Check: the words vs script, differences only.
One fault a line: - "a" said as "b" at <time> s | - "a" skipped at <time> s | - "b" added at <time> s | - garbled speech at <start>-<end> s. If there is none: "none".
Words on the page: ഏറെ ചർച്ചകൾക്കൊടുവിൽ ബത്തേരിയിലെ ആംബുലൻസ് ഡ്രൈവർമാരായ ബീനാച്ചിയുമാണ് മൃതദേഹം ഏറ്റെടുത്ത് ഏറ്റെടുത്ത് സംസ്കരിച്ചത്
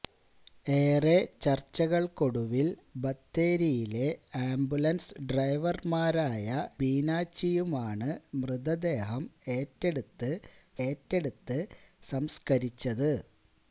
none